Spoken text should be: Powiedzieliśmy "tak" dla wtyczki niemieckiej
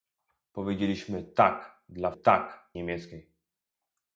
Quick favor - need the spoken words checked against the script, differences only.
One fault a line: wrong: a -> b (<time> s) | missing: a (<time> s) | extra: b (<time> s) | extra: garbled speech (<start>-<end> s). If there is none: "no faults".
wrong: wtyczki -> tak (2.1 s)